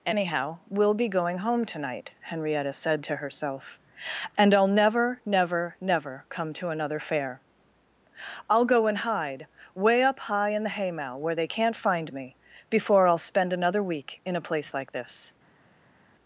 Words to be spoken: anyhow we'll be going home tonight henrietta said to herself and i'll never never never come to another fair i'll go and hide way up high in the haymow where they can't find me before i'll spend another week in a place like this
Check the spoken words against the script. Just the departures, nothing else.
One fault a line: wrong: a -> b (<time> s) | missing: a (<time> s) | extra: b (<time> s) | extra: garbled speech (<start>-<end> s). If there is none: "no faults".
no faults